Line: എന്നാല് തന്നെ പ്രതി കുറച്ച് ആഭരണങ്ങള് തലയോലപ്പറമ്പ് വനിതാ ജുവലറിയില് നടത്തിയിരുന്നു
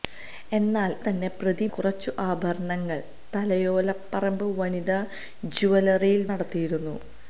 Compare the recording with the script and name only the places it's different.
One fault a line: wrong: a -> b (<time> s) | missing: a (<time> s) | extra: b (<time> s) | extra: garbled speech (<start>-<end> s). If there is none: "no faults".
no faults